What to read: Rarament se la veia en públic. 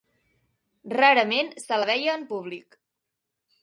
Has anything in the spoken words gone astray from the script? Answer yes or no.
no